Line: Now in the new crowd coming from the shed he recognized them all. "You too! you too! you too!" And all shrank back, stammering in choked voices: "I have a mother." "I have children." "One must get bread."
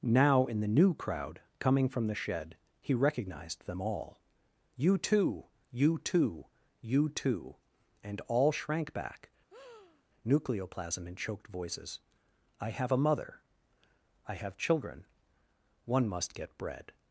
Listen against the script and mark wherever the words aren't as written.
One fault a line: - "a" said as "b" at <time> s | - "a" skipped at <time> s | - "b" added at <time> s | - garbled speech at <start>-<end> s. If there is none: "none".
- "stammering" said as "nucleoplasm" at 10.3 s